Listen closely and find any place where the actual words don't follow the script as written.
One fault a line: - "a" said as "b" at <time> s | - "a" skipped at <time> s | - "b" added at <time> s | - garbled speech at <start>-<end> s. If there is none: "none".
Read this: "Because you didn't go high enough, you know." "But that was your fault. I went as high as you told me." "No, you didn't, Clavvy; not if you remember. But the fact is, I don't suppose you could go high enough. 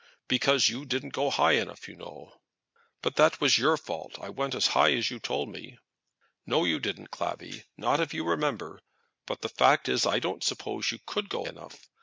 - "high" skipped at 11.4 s